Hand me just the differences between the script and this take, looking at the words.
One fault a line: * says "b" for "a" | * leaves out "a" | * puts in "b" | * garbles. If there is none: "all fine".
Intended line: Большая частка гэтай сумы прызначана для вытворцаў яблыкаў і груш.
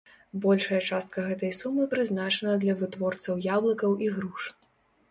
all fine